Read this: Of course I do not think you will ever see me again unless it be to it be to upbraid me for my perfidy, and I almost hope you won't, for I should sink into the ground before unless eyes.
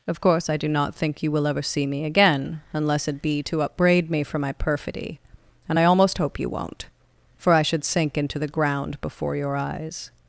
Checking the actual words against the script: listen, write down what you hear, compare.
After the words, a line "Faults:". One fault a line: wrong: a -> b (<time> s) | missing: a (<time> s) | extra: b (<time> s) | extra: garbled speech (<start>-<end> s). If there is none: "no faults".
Of course I do not think you will ever see me again unless it be to upbraid me for my perfidy, and I almost hope you won't, for I should sink into the ground before your eyes.
Faults:
missing: it be to (3.6 s)
wrong: unless -> your (9.4 s)